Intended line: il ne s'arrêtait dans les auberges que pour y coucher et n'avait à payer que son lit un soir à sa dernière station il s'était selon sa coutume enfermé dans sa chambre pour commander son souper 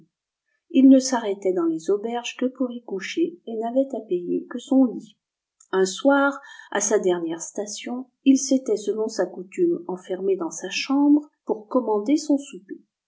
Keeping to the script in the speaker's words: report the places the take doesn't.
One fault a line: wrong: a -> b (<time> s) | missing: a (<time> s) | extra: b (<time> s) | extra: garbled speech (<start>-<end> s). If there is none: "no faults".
no faults